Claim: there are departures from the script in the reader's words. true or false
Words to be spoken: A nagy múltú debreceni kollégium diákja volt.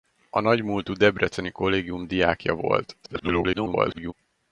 true